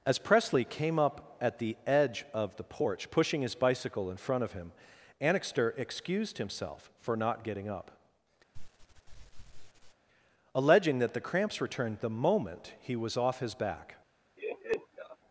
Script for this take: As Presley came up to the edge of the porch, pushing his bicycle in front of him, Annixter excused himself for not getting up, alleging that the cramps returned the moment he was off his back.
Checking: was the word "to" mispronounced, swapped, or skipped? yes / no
yes